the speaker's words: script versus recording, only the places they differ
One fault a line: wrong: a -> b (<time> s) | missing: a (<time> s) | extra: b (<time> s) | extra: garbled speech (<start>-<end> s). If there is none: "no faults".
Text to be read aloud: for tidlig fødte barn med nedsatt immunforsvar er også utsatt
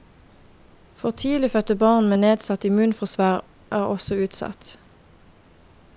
no faults